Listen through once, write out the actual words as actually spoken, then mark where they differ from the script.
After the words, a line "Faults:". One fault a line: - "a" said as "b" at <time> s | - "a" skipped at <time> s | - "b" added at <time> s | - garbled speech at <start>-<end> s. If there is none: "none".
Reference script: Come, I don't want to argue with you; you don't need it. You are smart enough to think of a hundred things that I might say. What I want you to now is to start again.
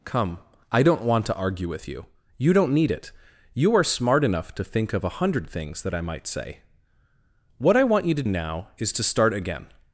Come, I don't want to argue with you; you don't need it. You are smart enough to think of a hundred things that I might say. What I want you to now is to start again.
Faults:
none